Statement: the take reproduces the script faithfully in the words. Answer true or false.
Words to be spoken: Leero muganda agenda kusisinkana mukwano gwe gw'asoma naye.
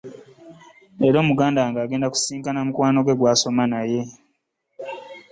false